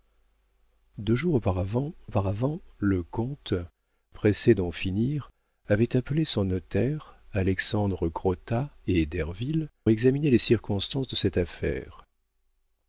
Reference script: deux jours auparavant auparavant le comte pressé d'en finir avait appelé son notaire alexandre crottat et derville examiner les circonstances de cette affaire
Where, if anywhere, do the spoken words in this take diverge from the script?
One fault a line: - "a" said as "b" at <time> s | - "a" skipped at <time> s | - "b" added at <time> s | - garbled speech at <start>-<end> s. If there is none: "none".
none